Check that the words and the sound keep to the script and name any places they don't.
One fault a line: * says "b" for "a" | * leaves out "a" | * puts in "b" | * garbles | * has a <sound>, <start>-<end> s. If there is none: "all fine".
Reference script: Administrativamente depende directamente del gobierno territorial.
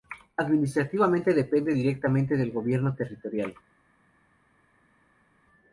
all fine